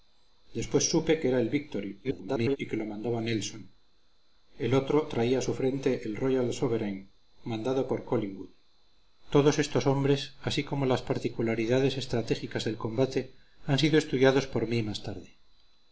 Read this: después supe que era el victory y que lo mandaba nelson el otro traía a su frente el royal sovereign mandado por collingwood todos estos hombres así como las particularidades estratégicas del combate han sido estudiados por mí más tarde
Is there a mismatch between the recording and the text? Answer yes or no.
yes